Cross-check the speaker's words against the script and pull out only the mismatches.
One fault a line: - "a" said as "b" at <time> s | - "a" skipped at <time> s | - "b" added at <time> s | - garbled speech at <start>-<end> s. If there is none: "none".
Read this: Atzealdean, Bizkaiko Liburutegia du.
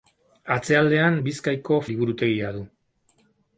none